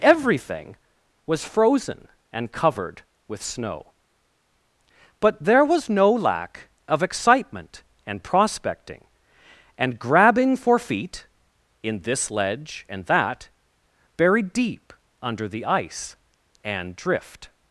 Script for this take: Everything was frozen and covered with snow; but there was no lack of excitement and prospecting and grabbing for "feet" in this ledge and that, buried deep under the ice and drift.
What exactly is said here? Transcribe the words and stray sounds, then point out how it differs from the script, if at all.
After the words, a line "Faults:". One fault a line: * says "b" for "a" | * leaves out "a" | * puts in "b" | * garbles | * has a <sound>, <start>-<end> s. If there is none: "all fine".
Everything was frozen and covered with snow; but there was no lack of excitement and prospecting and grabbing for "feet" in this ledge and that, buried deep under the ice and drift.
Faults:
all fine